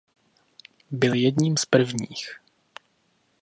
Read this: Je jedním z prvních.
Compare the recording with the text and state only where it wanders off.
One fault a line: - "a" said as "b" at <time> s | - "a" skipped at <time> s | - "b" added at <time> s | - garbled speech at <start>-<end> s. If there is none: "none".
- "Je" said as "Byl" at 0.9 s